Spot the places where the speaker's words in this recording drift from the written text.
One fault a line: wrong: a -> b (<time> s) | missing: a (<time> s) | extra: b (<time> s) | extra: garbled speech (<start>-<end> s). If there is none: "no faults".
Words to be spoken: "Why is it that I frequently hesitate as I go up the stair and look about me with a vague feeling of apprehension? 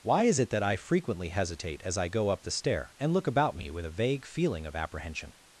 no faults